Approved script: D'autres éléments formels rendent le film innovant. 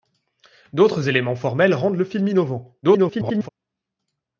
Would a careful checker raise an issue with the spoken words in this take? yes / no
yes